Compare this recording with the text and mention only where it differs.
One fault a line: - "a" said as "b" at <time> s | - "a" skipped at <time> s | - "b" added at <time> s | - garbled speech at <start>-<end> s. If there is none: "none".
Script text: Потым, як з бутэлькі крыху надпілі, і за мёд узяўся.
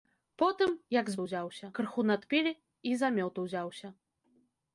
- "бутэлькі" said as "узяўся" at 1.2 s